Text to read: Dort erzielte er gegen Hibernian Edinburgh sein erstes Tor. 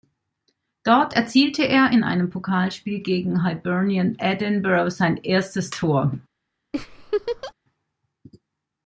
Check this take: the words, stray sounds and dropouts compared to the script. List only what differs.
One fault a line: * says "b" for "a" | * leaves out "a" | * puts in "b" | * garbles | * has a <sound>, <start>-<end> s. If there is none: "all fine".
* puts in "in einem Pokalspiel"
* has a laugh, 6.7-7.5 s